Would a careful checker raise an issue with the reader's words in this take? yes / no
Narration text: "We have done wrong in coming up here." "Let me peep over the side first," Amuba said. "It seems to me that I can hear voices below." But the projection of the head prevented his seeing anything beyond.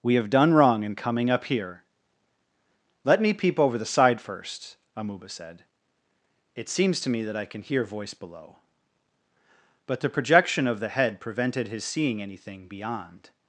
yes